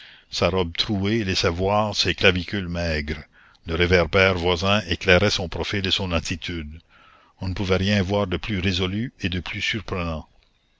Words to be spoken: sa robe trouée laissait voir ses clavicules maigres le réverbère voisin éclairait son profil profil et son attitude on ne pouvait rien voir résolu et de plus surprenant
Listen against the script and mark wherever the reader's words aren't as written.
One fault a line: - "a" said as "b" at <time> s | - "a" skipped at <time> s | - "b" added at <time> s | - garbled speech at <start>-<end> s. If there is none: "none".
- "profil" skipped at 5.8 s
- "de plus" added at 8.2 s